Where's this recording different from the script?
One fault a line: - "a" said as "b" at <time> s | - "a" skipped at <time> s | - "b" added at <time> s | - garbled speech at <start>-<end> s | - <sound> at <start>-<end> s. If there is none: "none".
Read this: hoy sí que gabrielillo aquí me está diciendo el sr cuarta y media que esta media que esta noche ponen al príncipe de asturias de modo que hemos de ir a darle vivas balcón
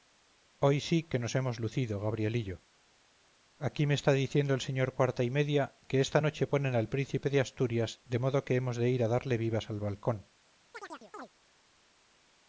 - "nos hemos lucido" added at 1.2 s
- "media que esta" skipped at 6.2 s
- "al" added at 9.7 s
- chirp at 10.7-11.3 s